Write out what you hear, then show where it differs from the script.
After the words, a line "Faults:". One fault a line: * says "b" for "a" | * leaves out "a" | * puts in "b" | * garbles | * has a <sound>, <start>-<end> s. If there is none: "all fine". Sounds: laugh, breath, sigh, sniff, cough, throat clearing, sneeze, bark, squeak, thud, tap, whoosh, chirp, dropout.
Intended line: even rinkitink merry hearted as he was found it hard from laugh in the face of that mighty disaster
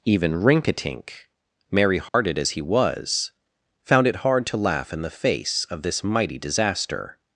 even rinkitink merry hearted as he was found it hard to laugh in the face of this mighty disaster
Faults:
* has a dropout, 2.1-2.1 s
* says "to" for "from"
* says "this" for "that"